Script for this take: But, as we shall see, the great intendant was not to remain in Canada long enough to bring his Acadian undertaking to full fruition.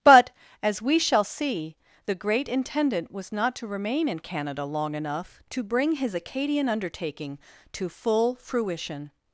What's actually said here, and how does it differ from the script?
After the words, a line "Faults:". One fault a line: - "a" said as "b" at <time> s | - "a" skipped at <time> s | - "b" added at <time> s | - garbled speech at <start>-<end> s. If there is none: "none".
But, as we shall see, the great intendant was not to remain in Canada long enough to bring his Acadian undertaking to full fruition.
Faults:
none